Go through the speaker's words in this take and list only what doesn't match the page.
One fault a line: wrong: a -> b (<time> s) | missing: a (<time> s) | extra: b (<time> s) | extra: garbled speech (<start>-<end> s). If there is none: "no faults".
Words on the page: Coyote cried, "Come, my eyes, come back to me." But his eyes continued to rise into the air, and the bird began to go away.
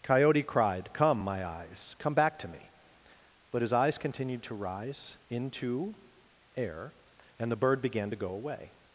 missing: the (6.0 s)